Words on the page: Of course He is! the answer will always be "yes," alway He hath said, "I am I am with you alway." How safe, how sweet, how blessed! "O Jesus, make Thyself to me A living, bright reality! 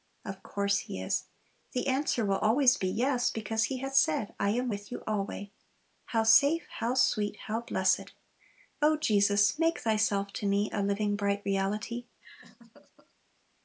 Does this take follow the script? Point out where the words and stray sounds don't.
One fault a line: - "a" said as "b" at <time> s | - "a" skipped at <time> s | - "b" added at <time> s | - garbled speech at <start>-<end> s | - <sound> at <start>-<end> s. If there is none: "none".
- "alway" said as "because" at 3.3 s
- "I am" skipped at 4.7 s
- laugh at 12.2-13.1 s